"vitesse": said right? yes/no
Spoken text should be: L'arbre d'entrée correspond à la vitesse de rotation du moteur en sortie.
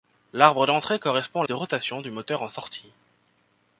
no